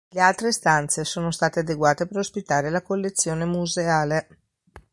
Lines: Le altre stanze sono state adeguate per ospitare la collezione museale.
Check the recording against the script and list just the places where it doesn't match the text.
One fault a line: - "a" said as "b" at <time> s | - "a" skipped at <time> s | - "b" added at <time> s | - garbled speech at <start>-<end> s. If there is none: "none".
none